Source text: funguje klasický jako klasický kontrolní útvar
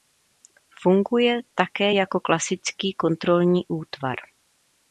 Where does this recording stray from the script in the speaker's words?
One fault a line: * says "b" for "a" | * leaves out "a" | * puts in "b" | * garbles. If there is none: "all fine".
* says "také" for "klasický"